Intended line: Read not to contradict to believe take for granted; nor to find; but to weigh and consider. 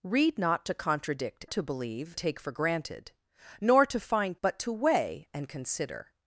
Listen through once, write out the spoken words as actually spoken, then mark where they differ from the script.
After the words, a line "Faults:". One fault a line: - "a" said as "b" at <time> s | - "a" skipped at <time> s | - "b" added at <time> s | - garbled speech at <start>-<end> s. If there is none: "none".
Read not to contradict to believe take for granted; nor to find; but to weigh and consider.
Faults:
none